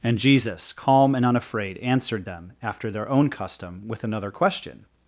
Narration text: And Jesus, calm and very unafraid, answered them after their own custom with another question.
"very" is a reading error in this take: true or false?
true